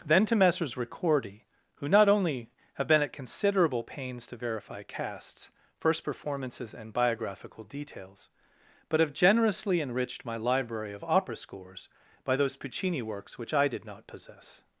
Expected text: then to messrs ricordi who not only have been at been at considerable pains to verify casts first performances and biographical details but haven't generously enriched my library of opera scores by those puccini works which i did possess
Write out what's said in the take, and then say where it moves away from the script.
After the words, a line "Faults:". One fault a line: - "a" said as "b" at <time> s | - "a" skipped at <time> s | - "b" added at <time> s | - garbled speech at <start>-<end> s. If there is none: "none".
then to messrs ricordi who not only have been at considerable pains to verify casts first performances and biographical details but have generously enriched my library of opera scores by those puccini works which i did not possess
Faults:
- "been at" skipped at 3.1 s
- "haven't" said as "have" at 9.0 s
- "not" added at 13.8 s